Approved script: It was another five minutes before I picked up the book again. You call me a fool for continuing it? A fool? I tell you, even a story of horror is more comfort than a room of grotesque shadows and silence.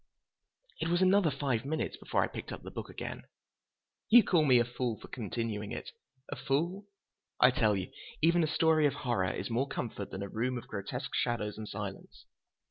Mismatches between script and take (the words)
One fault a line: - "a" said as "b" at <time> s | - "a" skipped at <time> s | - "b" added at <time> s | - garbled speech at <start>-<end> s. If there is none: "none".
none